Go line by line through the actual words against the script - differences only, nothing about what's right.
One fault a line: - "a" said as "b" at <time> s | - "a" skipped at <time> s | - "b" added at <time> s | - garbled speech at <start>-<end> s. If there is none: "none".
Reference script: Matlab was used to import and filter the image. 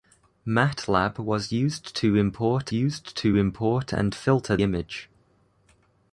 - "used to import" added at 2.7 s
- "the" skipped at 4.6 s